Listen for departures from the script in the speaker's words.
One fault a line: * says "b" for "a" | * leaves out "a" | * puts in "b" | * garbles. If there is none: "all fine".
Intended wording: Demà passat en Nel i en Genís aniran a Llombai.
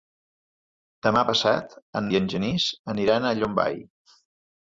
* leaves out "Nel"